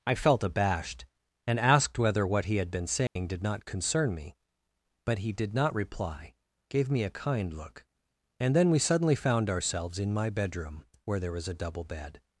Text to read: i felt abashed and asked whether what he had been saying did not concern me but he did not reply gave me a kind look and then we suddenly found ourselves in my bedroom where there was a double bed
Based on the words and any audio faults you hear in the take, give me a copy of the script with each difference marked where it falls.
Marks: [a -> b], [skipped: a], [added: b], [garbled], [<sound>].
i felt abashed and asked whether what he had been saying [dropout] did not concern me but he did not reply gave me a kind look and then we suddenly found ourselves in my bedroom where there was a double bed